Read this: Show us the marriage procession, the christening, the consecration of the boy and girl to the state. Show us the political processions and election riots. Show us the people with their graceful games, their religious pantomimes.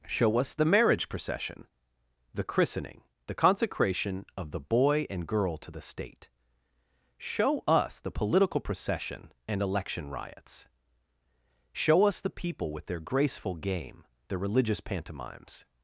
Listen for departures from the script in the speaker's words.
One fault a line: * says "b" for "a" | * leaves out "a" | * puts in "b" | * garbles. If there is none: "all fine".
* says "procession" for "processions"
* says "game" for "games"